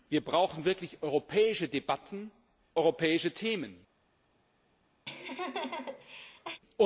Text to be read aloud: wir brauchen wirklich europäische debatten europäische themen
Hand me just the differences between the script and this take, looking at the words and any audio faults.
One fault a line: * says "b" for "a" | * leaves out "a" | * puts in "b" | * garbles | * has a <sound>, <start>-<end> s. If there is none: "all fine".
* has a laugh, 5.1-6.6 s